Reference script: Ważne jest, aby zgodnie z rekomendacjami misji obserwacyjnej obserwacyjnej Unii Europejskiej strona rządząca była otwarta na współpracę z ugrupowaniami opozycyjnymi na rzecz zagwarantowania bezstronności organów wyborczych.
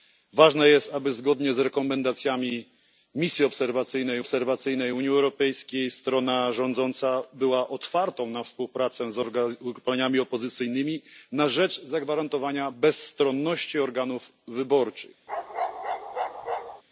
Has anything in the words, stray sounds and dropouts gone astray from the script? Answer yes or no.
yes